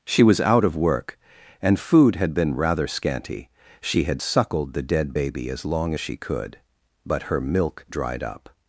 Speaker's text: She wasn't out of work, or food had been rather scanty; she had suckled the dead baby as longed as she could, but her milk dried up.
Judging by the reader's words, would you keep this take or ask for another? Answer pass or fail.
fail